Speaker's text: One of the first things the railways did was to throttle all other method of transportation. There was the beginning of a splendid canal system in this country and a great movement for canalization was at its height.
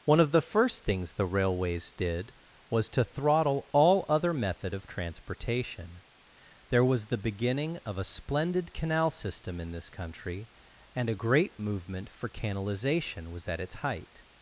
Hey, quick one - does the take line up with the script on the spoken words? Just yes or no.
yes